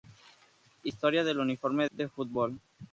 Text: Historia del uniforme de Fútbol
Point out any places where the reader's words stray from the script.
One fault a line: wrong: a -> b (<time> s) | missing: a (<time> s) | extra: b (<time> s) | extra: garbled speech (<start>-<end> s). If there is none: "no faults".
no faults